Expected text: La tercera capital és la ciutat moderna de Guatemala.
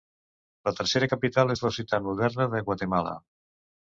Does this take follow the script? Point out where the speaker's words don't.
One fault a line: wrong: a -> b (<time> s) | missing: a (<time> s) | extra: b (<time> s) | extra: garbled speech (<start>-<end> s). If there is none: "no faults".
no faults